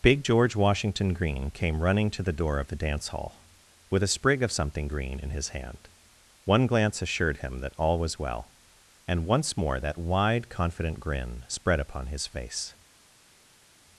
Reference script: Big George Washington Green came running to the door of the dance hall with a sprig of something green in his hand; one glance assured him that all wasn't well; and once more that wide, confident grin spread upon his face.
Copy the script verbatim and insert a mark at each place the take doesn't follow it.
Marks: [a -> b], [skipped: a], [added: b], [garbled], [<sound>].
Big George Washington Green came running to the door of the dance hall with a sprig of something green in his hand; one glance assured him that all [wasn't -> was] well; and once more that wide, confident grin spread upon his face.